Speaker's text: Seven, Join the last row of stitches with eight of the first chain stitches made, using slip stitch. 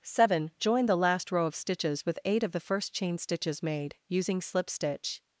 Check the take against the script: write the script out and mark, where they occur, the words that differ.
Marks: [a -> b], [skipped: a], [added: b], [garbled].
Seven, Join the last row of stitches with eight of the first chain stitches made, using slip stitch.